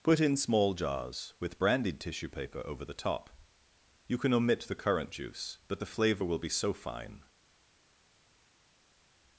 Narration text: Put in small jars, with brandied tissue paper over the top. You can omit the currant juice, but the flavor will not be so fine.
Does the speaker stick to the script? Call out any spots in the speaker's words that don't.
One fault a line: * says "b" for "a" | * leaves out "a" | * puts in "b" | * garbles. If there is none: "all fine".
* leaves out "not"